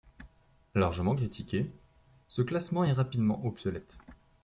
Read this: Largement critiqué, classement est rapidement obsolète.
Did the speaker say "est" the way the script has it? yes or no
yes